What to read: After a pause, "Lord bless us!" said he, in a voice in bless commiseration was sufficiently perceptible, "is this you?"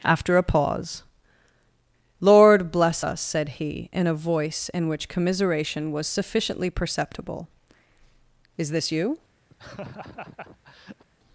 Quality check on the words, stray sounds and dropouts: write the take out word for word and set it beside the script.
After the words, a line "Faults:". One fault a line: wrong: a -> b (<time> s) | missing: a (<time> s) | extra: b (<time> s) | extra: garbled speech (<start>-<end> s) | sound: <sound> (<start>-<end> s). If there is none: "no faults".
After a pause, "Lord bless us!" said he, in a voice in which commiseration was sufficiently perceptible, "is this you?"
Faults:
wrong: bless -> which (4.9 s)
sound: laugh (9.5-11.0 s)